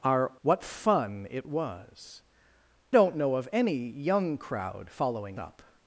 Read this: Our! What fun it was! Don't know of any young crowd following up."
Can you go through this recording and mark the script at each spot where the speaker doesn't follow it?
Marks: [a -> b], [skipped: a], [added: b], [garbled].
Our! What fun it was! Don't know of any young crowd following up."